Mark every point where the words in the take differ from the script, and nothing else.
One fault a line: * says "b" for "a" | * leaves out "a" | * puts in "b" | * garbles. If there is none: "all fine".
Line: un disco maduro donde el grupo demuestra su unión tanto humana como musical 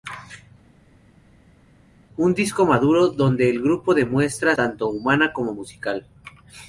* leaves out "su unión"